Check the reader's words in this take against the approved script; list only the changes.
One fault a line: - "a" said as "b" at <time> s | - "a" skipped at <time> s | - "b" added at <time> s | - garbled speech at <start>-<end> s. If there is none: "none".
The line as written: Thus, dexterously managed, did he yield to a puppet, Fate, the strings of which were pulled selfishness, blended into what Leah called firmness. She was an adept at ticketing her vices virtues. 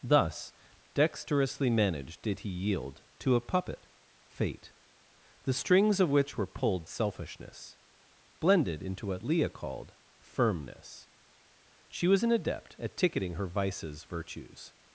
none